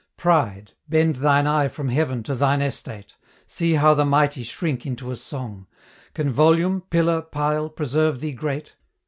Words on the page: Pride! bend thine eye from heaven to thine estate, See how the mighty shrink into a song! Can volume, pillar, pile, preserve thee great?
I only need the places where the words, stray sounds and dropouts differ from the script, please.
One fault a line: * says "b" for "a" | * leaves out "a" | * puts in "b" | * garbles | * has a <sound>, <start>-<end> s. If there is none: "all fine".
all fine